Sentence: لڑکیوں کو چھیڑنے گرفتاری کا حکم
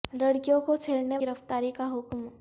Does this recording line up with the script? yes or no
yes